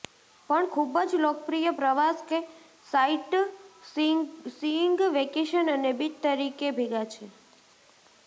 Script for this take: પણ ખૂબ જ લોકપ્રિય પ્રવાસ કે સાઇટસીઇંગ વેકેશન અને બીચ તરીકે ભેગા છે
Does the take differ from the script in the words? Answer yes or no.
no